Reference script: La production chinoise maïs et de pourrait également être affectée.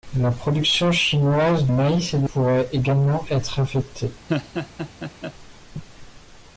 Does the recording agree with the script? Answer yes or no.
yes